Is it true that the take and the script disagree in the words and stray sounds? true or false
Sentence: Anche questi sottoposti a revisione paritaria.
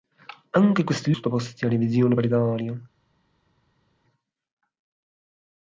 false